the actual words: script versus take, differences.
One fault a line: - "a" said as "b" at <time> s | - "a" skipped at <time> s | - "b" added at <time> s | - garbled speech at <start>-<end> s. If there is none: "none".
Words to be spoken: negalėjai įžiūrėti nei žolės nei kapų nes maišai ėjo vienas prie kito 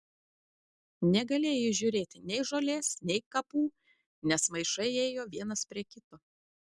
none